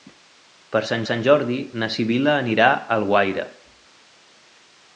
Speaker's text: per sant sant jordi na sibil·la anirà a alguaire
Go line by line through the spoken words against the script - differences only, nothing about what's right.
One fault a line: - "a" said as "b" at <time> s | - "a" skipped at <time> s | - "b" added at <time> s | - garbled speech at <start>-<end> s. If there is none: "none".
none